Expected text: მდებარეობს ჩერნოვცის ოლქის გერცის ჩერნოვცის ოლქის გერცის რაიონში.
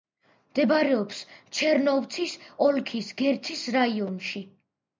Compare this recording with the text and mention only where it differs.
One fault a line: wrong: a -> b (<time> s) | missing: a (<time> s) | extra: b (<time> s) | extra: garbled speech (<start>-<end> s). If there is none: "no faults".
missing: ჩერნოვცის ოლქის გერცის (3.7 s)